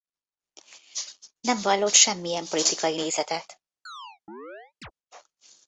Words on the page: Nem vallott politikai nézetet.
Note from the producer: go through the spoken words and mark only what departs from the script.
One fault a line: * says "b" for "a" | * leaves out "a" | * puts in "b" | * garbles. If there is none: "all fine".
* puts in "semmilyen"